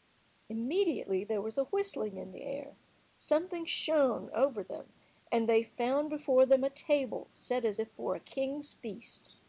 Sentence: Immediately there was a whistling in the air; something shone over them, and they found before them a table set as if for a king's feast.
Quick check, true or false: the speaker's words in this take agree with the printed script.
true